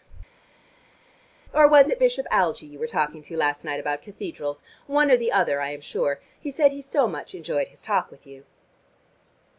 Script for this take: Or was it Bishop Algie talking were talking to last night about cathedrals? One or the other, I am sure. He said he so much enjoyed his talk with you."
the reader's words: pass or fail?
fail